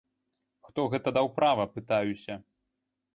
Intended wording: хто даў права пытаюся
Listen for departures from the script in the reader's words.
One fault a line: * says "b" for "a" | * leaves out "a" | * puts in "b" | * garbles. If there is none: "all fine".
* puts in "гэта"